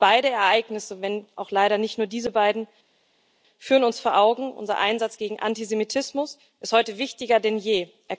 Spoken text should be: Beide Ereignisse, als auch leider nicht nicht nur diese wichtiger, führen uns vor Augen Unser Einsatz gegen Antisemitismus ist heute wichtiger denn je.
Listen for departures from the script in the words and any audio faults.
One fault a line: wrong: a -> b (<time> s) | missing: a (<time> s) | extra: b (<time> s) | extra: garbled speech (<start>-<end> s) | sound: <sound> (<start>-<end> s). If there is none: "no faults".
wrong: als -> wenn (1.0 s)
missing: nicht (2.0 s)
wrong: wichtiger -> beiden (2.3 s)